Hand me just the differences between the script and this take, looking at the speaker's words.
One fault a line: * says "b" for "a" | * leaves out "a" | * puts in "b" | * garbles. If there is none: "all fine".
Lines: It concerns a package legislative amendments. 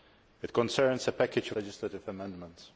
all fine